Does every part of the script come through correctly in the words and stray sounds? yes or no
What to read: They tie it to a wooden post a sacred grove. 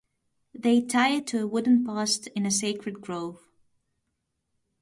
no